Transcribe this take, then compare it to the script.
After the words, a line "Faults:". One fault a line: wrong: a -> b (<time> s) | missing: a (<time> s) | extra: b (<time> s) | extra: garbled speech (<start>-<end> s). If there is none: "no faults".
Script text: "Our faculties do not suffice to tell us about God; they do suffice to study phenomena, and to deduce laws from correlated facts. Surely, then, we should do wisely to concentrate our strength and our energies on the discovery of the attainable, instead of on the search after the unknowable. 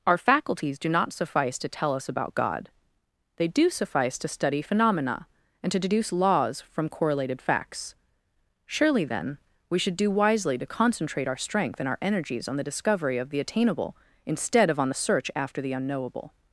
"Our faculties do not suffice to tell us about God; they do suffice to study phenomena, and to deduce laws from correlated facts. Surely, then, we should do wisely to concentrate our strength and our energies on the discovery of the attainable, instead of on the search after the unknowable.
Faults:
no faults